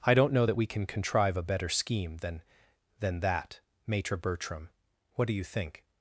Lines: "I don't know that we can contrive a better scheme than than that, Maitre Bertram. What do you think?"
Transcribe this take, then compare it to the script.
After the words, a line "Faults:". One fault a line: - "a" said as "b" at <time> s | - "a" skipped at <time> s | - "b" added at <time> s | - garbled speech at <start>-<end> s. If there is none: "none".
"I don't know that we can contrive a better scheme than than that, Maitre Bertram. What do you think?"
Faults:
none